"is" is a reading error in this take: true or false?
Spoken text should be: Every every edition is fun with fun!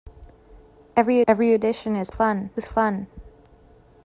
false